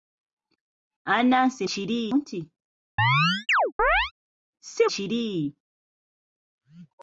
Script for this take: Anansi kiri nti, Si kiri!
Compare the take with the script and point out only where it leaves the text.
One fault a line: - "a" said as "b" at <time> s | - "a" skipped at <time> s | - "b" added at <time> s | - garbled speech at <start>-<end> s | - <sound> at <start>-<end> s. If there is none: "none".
- chirp at 3.0-4.1 s